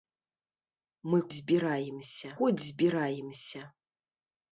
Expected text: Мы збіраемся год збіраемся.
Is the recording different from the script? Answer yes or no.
no